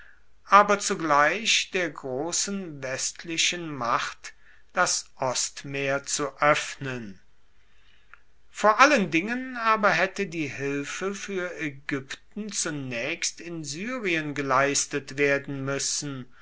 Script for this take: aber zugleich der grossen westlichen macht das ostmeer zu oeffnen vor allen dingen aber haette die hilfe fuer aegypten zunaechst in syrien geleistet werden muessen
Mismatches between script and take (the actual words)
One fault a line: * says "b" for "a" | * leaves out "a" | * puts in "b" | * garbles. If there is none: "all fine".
all fine